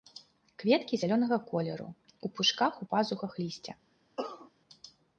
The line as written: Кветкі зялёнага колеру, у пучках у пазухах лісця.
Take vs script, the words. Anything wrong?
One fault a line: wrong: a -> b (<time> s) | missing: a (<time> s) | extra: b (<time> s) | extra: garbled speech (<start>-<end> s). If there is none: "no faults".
no faults